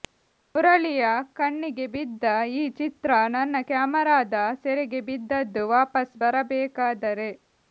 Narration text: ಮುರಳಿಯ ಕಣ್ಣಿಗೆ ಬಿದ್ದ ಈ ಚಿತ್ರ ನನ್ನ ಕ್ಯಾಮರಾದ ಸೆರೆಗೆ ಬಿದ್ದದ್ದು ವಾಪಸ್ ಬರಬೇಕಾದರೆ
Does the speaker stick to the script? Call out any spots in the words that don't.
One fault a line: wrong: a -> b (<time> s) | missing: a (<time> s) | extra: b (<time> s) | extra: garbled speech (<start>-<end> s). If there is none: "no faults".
no faults